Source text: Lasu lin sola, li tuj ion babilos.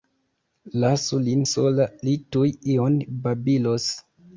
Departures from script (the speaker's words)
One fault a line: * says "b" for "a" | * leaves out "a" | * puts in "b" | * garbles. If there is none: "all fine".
all fine